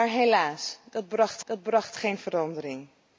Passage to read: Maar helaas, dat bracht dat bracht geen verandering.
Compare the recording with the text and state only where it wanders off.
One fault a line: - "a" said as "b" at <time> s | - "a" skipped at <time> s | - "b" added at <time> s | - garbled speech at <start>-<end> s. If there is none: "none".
none